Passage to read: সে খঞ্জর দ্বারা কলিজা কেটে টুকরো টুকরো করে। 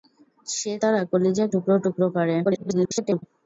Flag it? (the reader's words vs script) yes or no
yes